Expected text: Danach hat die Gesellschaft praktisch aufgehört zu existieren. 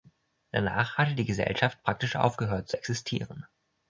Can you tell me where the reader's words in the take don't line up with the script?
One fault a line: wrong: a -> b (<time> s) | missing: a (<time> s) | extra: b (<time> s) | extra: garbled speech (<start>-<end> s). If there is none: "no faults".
wrong: hat -> hatte (1.0 s)